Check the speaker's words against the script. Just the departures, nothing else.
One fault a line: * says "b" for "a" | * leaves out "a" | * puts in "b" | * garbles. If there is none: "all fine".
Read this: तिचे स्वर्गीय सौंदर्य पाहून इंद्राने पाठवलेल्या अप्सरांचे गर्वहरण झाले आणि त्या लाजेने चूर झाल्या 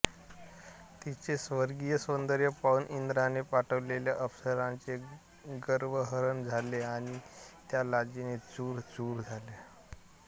* puts in "चूर"